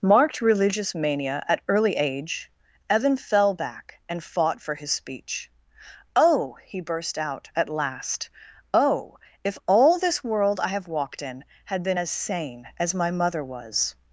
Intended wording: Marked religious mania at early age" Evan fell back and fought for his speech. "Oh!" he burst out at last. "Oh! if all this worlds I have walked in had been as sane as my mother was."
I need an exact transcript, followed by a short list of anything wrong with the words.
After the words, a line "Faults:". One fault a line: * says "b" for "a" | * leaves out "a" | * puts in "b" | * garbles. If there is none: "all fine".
Marked religious mania at early age" Evan fell back and fought for his speech. "Oh!" he burst out at last. "Oh! if all this world I have walked in had been as sane as my mother was."
Faults:
* says "world" for "worlds"